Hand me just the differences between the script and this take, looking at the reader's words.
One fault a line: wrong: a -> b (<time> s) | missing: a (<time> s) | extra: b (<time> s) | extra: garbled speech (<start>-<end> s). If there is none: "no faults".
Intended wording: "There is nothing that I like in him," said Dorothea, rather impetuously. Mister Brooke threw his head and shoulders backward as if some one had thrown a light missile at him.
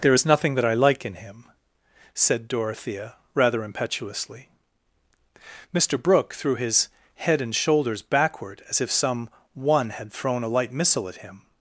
no faults